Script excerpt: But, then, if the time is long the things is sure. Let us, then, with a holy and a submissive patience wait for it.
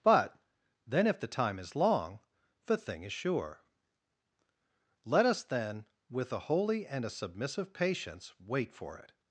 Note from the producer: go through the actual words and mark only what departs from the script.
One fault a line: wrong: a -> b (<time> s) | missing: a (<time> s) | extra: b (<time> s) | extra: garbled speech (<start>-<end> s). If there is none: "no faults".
wrong: things -> thing (2.8 s)